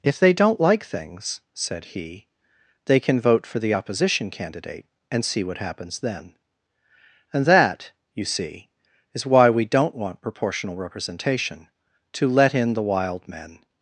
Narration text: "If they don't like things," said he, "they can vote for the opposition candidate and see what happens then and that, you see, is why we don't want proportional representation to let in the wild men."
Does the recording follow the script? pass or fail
pass